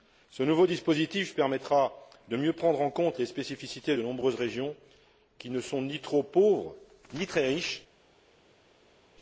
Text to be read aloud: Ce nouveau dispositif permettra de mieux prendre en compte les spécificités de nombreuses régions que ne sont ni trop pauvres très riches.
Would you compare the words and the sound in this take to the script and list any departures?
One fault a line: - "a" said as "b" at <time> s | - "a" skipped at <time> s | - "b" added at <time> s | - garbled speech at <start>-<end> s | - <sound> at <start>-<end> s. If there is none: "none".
- "que" said as "qui" at 5.4 s
- "ni" added at 7.1 s